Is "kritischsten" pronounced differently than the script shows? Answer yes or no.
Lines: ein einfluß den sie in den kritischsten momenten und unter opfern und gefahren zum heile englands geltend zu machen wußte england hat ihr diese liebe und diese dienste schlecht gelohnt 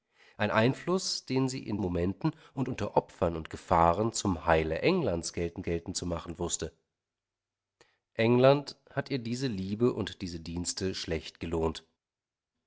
yes